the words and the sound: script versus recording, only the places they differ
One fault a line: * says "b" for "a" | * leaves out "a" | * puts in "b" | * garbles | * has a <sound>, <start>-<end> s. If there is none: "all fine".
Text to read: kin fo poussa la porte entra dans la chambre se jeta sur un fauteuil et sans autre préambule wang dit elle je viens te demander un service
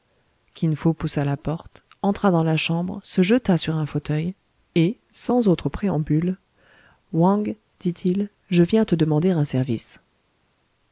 * says "il" for "elle"